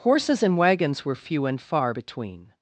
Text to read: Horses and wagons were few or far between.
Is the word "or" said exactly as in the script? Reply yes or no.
no